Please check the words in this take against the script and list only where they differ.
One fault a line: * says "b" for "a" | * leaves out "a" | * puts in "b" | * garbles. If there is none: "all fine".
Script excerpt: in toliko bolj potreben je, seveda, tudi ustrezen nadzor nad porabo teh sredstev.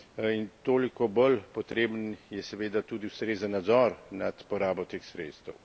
all fine